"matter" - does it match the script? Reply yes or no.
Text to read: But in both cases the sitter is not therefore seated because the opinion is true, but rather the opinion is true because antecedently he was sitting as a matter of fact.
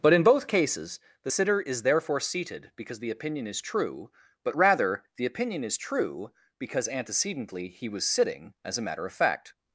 yes